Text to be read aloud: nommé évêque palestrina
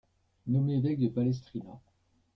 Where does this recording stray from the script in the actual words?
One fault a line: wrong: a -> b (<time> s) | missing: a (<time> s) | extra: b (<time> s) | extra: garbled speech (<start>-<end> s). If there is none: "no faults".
extra: de (1.0 s)